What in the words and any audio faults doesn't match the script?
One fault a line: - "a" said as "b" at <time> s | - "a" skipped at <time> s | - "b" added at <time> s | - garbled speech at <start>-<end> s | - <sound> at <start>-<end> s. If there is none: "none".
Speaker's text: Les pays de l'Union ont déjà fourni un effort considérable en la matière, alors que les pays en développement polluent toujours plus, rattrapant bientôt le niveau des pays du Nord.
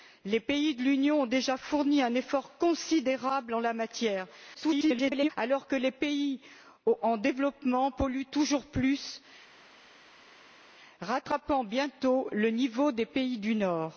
- garbled speech at 4.5-5.3 s